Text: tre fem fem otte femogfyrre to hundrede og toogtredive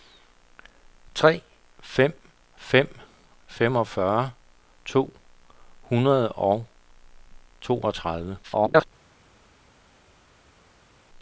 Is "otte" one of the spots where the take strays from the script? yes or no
yes